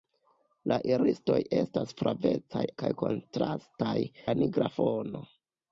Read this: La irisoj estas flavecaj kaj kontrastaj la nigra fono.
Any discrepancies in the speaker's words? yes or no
no